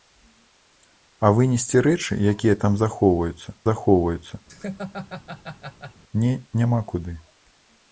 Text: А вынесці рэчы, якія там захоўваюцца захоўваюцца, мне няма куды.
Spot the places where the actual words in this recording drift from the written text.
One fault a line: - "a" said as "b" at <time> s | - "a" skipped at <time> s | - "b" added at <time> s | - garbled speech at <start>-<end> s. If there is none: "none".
none